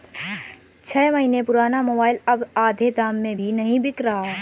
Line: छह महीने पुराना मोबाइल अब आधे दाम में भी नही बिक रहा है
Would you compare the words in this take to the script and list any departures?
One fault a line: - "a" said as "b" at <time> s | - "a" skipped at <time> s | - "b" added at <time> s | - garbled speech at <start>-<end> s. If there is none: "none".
none